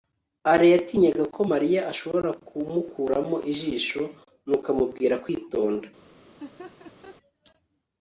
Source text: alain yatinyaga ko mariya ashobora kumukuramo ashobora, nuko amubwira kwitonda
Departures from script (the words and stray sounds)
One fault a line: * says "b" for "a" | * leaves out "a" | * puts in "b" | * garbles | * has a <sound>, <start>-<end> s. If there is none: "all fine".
* says "ijisho" for "ashobora"
* has a laugh, 6.4-7.2 s